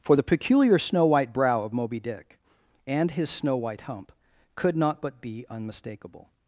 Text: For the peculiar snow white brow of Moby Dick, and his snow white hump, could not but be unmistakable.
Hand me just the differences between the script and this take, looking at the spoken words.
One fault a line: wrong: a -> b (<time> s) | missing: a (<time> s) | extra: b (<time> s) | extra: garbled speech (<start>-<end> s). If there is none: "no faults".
no faults